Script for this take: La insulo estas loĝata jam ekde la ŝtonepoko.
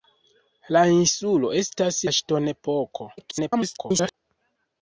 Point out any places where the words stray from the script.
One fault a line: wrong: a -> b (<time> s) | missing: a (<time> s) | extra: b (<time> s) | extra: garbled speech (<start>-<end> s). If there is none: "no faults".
missing: loĝata jam ekde (2.0 s)
extra: garbled speech (3.2-4.1 s)